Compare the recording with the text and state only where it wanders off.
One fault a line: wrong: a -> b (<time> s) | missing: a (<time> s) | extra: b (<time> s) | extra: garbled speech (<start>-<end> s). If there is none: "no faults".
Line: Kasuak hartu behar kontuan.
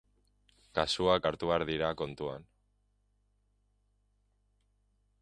extra: dira (1.7 s)